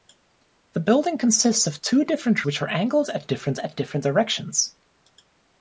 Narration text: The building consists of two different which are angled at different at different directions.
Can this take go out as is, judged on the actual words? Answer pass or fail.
pass